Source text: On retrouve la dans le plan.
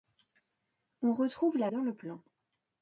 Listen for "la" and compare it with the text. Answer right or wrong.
right